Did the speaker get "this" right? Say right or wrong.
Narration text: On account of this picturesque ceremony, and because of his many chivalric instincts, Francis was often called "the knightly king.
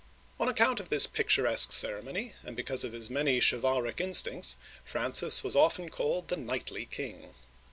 right